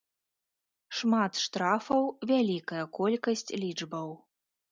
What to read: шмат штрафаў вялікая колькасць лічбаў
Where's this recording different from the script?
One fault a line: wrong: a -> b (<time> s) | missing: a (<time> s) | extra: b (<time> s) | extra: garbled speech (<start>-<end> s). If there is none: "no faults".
no faults